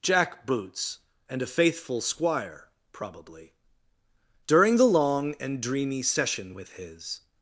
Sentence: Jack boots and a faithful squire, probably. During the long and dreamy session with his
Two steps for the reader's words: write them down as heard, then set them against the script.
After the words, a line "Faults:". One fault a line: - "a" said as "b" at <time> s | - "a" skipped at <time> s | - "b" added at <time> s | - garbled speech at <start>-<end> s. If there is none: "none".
Jack boots and a faithful squire, probably. During the long and dreamy session with his
Faults:
none